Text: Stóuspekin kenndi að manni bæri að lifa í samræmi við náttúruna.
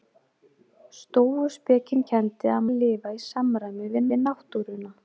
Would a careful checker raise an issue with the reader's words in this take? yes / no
yes